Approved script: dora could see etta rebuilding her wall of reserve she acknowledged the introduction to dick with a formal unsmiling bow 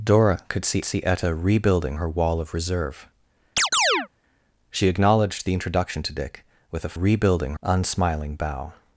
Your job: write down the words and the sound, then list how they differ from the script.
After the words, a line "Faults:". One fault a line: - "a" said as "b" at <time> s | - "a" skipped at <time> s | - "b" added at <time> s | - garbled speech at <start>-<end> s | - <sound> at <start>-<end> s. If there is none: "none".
dora could see see etta rebuilding her wall of reserve she acknowledged the introduction to dick with a rebuilding unsmiling bow
Faults:
- "see" added at 0.8 s
- chirp at 3.6-4.1 s
- "formal" said as "rebuilding" at 6.9 s